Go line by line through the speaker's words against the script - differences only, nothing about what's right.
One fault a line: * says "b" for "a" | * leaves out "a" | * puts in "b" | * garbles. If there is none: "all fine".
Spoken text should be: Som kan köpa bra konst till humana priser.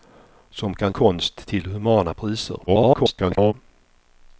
* leaves out "köpa bra"
* garbles